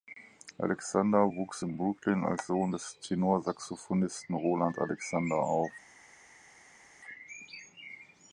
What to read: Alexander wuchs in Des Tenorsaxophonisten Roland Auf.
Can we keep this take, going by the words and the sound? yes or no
no